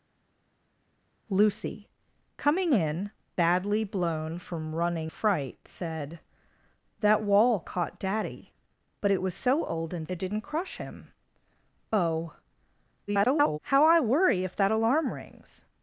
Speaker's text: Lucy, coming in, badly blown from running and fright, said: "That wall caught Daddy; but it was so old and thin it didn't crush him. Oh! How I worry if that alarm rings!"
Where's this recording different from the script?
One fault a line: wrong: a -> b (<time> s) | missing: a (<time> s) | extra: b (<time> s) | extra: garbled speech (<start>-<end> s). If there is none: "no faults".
missing: and (5.1 s)
missing: thin (10.1 s)
extra: garbled speech (13.1-13.6 s)